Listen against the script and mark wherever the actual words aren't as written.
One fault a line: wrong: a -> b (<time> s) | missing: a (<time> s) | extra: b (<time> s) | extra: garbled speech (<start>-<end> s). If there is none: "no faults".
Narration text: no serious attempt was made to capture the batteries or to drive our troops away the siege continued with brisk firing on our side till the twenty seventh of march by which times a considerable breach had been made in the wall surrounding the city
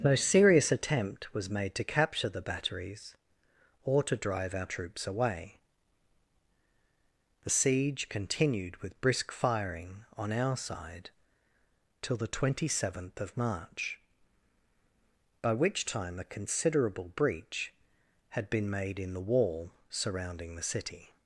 wrong: times -> time (15.8 s)